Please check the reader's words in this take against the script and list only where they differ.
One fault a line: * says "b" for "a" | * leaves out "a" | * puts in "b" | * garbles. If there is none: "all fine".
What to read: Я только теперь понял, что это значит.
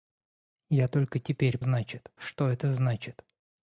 * says "значит" for "понял"